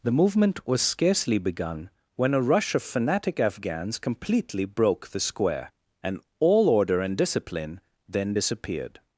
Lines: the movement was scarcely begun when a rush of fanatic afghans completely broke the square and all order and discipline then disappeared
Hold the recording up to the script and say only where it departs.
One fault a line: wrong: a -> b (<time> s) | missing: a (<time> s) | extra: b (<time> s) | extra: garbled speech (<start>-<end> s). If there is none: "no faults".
no faults